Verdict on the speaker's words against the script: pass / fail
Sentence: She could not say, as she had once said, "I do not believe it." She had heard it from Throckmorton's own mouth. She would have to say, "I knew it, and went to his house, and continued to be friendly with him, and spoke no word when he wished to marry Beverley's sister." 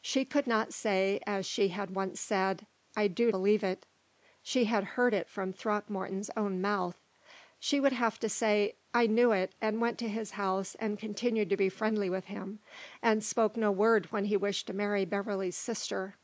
fail